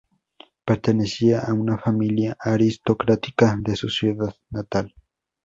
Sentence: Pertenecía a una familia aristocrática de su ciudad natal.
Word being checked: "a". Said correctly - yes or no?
yes